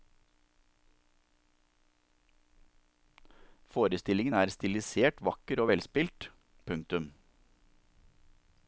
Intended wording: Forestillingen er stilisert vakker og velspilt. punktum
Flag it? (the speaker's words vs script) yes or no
no